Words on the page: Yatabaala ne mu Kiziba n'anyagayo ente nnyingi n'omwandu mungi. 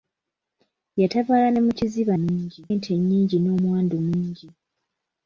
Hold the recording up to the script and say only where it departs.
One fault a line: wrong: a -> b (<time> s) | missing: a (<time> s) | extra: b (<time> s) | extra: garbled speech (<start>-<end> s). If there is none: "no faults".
wrong: n'anyagayo -> mungi (2.2 s)